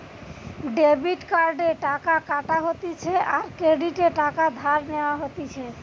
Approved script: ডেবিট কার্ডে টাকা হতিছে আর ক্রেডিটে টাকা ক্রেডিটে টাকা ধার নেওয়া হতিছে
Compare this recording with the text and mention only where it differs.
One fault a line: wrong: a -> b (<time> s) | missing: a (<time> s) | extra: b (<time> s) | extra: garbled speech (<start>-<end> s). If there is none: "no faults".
extra: কাটা (2.3 s)
missing: ক্রেডিটে টাকা (4.4 s)